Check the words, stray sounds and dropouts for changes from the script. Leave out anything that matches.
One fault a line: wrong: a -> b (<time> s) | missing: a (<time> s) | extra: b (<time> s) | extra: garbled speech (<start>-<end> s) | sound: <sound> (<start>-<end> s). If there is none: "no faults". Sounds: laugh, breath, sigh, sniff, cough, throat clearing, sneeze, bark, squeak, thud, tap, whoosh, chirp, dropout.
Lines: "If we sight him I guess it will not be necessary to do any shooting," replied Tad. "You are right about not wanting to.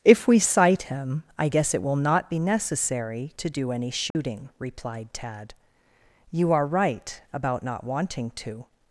sound: dropout (4.1-4.1 s)